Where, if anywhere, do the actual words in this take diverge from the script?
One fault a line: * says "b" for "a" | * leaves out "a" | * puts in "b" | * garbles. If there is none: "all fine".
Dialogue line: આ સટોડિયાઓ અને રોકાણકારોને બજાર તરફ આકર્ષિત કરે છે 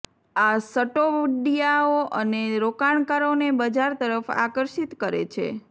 all fine